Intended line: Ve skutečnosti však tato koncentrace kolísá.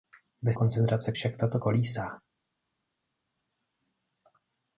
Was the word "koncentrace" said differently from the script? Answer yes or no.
yes